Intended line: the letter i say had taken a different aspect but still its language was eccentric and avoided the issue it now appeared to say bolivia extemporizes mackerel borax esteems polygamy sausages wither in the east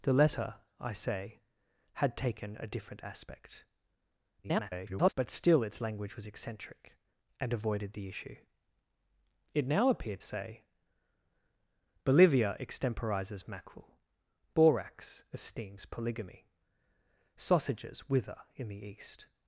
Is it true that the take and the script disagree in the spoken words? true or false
true